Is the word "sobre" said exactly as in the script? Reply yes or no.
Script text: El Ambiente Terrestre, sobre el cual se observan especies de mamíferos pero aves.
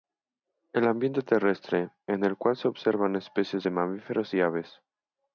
no